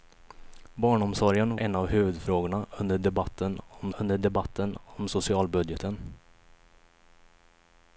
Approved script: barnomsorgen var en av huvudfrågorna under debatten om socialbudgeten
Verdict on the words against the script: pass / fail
fail